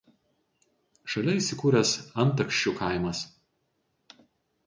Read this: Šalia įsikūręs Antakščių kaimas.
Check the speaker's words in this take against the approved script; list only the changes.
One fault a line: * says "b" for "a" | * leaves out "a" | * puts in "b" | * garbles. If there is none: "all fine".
all fine